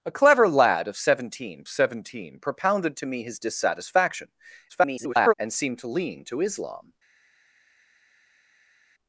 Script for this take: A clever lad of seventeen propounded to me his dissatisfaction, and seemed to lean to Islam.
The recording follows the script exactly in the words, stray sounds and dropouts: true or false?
false